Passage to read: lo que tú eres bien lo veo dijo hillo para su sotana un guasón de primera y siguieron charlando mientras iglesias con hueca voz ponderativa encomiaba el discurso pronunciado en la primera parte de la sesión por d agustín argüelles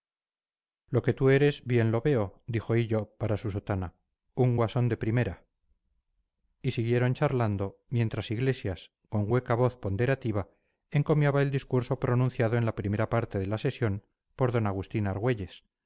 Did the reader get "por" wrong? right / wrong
right